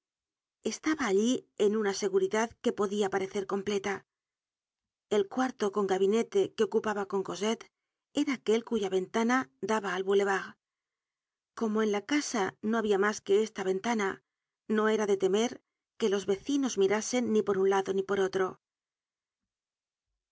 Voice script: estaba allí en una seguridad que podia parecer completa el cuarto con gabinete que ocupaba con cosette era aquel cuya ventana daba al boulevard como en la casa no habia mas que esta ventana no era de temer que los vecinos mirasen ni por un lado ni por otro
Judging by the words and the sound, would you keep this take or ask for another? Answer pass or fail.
pass